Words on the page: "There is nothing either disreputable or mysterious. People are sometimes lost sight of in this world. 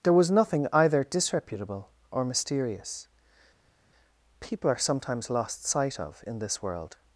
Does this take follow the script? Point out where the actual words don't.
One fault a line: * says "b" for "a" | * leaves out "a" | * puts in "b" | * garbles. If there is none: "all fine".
* says "was" for "is"